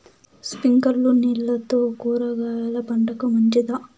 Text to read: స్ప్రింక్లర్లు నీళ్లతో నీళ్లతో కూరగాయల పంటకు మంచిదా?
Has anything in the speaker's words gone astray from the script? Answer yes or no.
yes